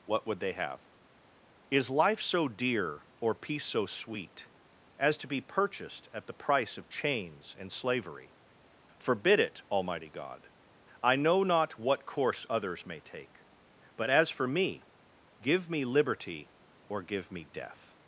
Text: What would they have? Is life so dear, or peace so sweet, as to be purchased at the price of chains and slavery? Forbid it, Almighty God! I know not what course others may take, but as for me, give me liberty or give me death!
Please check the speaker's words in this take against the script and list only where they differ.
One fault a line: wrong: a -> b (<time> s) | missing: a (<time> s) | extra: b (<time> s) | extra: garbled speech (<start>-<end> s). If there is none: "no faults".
no faults